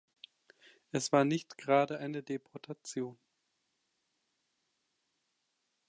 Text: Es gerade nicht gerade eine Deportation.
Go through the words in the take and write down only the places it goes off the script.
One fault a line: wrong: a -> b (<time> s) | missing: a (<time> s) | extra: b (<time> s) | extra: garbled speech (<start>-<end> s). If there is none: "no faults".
wrong: gerade -> war (1.1 s)